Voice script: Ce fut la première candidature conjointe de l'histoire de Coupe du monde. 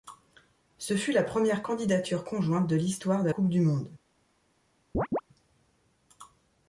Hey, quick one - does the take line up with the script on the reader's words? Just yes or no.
yes